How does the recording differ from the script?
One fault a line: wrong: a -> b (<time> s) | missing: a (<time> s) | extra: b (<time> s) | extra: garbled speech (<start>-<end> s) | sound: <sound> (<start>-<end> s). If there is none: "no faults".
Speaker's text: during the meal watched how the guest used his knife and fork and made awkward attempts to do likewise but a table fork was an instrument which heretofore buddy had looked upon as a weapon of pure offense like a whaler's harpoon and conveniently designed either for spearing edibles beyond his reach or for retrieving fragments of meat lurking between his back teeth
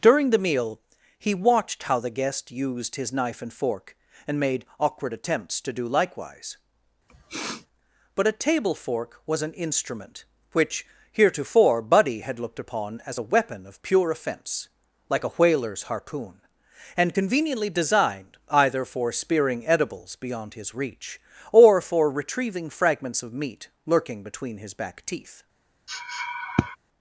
extra: he (1.2 s)
sound: sniff (7.1-7.7 s)
sound: sniff (25.9-26.8 s)